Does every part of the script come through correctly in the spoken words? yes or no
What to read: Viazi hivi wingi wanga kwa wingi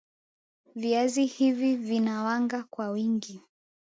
no